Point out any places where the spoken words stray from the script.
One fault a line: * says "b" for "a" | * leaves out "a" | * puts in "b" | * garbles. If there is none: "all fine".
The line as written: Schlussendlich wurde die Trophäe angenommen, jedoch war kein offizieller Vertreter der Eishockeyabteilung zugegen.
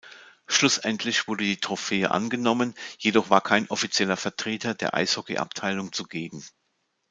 all fine